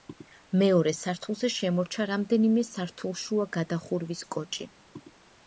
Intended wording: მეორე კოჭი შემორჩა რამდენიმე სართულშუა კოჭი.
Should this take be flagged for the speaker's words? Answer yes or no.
yes